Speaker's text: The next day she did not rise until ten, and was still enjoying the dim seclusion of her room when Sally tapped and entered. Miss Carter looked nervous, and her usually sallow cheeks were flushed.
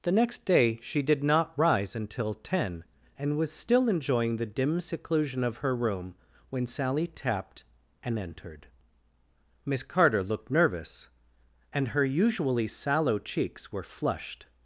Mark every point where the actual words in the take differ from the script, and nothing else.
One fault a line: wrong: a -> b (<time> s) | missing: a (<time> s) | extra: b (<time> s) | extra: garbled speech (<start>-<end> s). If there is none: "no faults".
no faults